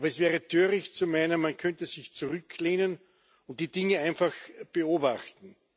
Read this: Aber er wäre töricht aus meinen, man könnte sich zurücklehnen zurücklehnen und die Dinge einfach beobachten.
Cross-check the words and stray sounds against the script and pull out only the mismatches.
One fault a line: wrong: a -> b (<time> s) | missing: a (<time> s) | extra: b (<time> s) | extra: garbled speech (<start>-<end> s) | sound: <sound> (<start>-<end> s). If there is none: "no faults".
wrong: er -> es (0.1 s)
wrong: aus -> zu (0.9 s)
missing: zurücklehnen (3.0 s)